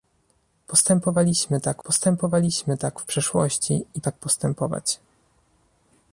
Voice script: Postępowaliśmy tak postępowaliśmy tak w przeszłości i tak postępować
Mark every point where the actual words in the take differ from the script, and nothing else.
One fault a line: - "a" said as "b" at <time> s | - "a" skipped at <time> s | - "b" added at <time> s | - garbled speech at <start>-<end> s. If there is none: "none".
none